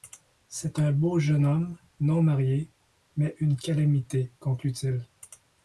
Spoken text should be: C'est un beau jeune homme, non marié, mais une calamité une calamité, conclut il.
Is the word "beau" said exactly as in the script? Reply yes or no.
yes